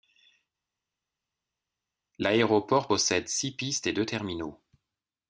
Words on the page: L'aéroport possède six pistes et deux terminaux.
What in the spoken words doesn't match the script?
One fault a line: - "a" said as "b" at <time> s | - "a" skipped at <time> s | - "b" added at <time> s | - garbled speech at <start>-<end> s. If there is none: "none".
none